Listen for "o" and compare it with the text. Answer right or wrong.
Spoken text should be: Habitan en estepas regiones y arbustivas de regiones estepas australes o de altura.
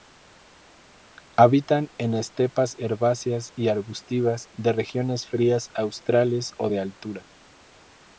right